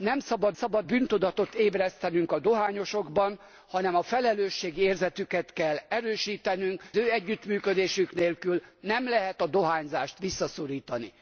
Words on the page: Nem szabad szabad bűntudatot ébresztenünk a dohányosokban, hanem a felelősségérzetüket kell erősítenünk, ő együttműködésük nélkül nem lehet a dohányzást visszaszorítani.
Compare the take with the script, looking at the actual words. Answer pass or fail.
pass